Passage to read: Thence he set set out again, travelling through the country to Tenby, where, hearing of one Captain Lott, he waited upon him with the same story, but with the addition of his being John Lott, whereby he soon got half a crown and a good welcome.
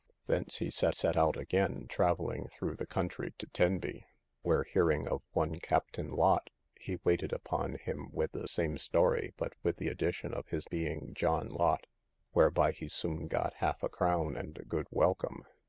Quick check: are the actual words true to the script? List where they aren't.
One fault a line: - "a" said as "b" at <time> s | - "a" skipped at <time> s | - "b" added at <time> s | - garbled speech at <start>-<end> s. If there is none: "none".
none